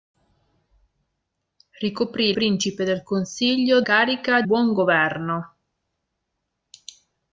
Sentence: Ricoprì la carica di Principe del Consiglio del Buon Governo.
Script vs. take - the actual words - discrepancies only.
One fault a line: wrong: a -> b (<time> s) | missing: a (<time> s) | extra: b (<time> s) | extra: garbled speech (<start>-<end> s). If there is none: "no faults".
missing: la carica di (2.3 s)
wrong: del -> carica (3.8 s)